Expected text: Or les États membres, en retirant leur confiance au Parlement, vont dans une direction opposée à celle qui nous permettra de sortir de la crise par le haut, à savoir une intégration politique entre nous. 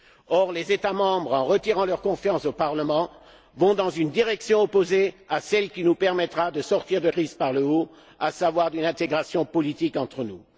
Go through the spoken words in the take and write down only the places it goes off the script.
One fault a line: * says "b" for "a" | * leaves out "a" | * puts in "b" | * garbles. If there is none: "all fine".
* leaves out "la"